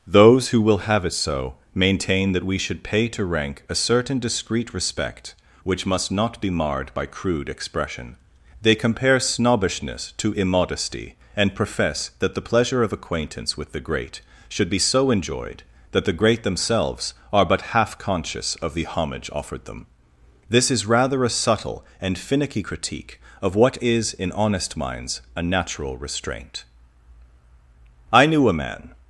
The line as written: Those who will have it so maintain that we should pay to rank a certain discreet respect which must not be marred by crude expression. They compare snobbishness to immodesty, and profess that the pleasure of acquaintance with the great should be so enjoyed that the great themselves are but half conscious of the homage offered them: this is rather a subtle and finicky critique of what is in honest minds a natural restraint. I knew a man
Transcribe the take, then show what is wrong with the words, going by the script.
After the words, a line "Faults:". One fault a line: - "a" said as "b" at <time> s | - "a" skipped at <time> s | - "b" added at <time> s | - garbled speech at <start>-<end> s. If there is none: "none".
Those who will have it so maintain that we should pay to rank a certain discreet respect which must not be marred by crude expression. They compare snobbishness to immodesty, and profess that the pleasure of acquaintance with the great should be so enjoyed that the great themselves are but half conscious of the homage offered them: this is rather a subtle and finicky critique of what is in honest minds a natural restraint. I knew a man
Faults:
none